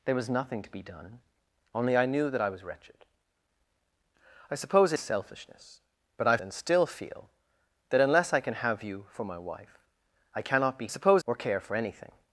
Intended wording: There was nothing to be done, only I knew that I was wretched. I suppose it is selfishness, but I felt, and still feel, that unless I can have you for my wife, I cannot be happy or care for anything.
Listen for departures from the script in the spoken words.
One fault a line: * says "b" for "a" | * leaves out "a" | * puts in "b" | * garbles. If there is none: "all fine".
* leaves out "is"
* leaves out "felt"
* says "suppose" for "happy"